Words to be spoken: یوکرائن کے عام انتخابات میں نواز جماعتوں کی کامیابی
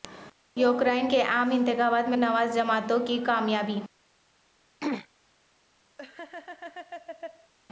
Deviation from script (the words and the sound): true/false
true